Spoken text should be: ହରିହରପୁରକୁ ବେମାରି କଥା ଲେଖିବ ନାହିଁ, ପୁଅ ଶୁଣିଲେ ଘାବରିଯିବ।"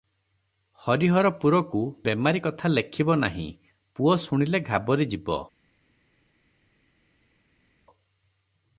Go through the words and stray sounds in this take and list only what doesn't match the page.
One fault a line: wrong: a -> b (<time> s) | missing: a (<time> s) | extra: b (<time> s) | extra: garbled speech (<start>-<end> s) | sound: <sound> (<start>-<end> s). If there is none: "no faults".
no faults